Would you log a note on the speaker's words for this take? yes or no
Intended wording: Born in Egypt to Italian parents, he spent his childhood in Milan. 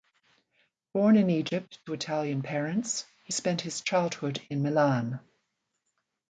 no